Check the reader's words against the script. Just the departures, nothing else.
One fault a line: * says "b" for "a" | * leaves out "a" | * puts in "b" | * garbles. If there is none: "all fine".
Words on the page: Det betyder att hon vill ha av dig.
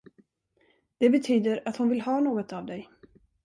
* puts in "något"